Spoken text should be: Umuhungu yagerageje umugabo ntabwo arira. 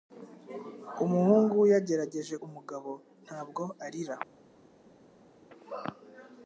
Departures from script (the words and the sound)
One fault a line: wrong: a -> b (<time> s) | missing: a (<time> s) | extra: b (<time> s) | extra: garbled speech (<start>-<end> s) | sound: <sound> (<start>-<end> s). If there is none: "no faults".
no faults